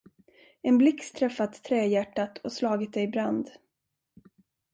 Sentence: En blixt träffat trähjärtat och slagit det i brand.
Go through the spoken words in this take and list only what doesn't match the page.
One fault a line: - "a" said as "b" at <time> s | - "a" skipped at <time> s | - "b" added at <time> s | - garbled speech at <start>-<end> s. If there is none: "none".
none